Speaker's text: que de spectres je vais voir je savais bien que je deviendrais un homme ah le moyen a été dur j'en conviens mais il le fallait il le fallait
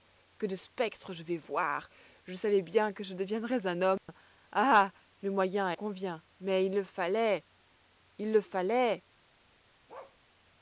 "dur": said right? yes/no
no